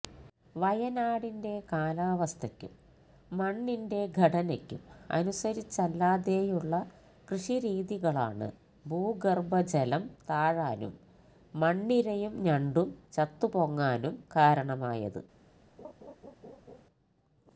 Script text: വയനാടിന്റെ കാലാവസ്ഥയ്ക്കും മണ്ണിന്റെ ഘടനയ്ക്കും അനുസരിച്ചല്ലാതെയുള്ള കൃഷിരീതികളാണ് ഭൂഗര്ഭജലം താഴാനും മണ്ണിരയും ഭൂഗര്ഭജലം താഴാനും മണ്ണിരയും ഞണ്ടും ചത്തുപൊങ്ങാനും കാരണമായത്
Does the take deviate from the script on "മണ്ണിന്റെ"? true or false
false